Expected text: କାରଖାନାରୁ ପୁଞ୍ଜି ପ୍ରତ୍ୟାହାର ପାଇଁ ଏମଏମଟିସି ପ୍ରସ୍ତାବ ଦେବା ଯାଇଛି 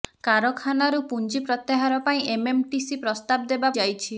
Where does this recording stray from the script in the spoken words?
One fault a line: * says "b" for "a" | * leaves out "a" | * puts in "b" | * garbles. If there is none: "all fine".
all fine